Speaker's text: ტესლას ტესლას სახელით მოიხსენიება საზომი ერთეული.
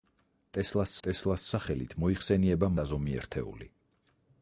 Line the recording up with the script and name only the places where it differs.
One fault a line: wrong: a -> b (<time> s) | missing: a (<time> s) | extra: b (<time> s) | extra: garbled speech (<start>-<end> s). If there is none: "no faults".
no faults